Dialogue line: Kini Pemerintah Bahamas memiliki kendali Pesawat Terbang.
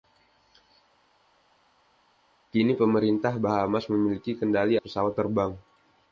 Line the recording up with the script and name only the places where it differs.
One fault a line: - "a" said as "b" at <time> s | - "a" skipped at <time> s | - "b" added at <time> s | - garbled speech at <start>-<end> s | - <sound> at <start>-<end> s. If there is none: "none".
none